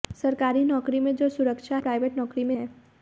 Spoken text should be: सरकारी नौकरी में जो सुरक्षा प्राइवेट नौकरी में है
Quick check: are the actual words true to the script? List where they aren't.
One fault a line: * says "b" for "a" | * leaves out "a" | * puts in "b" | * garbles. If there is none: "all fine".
all fine